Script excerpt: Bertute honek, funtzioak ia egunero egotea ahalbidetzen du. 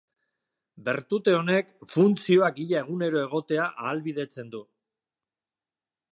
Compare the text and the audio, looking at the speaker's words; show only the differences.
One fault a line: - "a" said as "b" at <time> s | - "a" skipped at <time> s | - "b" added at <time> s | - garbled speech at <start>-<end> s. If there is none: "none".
none